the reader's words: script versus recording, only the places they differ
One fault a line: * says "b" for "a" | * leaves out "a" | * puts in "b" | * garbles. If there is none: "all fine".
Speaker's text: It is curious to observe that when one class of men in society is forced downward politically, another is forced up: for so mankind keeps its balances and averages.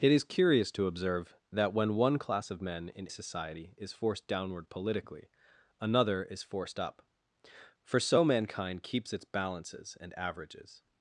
all fine